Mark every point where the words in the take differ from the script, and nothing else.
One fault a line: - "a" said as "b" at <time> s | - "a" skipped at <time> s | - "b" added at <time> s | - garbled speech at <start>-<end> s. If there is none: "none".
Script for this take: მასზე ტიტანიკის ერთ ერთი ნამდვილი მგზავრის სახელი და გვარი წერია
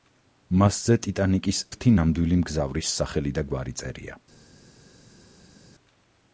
- "ერთ" skipped at 1.6 s